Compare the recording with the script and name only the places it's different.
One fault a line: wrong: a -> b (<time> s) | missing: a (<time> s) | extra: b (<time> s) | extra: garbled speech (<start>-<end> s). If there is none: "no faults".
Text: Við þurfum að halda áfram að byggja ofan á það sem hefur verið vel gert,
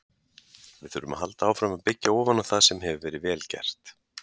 no faults